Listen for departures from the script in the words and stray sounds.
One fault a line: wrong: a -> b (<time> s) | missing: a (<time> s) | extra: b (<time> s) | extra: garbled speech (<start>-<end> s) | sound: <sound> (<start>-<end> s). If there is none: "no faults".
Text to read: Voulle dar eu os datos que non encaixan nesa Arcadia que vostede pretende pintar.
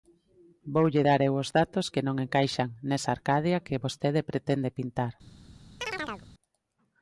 sound: chirp (5.8-6.3 s)